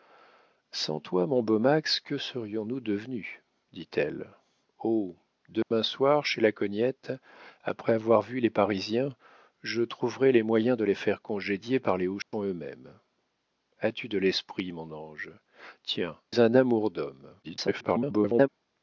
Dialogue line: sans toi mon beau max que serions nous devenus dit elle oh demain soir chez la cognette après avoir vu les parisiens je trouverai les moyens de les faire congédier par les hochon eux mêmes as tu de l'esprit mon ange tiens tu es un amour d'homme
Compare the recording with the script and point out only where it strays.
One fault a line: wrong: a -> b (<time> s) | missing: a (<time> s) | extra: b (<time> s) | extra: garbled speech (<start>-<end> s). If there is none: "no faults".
missing: tu (16.2 s)
extra: garbled speech (17.4-18.5 s)